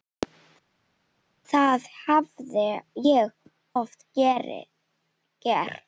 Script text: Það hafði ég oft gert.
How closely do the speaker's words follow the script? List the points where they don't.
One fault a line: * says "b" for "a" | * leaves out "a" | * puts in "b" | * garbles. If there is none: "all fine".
all fine